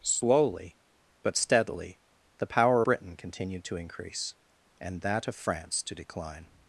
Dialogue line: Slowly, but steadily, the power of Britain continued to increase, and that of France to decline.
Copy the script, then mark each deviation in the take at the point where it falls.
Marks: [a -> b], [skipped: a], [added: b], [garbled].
Slowly, but steadily, the power [skipped: of] Britain continued to increase, and that of France to decline.